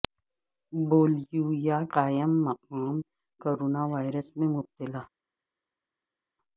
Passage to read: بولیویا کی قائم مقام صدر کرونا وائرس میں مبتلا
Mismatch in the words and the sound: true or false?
true